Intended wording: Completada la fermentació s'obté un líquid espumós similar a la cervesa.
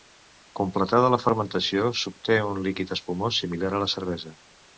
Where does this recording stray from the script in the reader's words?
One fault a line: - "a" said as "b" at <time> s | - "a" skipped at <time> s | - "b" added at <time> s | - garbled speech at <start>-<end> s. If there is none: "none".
none